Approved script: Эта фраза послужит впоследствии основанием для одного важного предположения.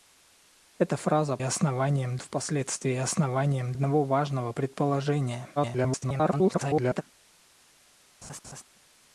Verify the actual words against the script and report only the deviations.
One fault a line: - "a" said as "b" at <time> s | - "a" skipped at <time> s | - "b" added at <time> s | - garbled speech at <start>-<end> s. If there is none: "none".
- "послужит" said as "основанием" at 1.4 s
- "для" skipped at 3.7 s
- garbled speech at 5.6-7.0 s